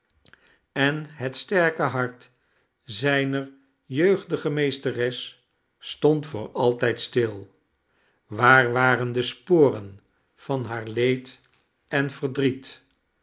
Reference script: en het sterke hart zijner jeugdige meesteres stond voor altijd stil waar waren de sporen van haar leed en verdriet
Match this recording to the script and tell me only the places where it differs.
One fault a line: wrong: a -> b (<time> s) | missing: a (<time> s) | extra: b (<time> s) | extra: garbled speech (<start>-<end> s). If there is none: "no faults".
no faults